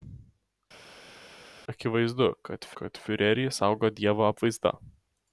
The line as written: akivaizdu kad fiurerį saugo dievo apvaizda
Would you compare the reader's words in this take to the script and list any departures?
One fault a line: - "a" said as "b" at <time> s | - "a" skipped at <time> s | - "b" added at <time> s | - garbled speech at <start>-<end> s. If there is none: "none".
- "kad" added at 2.8 s